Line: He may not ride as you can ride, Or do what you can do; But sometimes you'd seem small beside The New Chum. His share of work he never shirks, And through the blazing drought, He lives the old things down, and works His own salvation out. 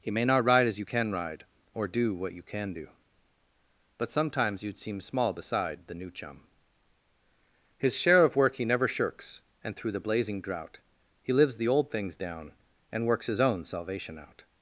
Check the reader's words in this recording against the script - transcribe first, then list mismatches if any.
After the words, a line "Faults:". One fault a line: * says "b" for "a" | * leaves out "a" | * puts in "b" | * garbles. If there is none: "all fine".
He may not ride as you can ride, Or do what you can do; But sometimes you'd seem small beside The New Chum. His share of work he never shirks, And through the blazing drought, He lives the old things down, and works His own salvation out.
Faults:
all fine